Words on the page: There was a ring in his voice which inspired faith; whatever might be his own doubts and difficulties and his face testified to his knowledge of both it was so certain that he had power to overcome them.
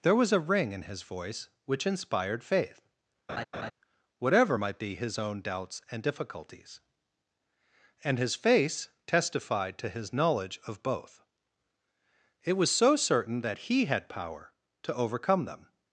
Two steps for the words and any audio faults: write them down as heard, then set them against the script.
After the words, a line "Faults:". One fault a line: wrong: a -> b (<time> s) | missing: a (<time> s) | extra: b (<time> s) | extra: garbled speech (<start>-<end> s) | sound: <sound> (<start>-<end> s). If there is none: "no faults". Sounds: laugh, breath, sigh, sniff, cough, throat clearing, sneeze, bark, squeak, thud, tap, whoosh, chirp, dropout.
There was a ring in his voice which inspired faith; whatever might be his own doubts and difficulties and his face testified to his knowledge of both it was so certain that he had power to overcome them.
Faults:
sound: laugh (3.3-3.7 s)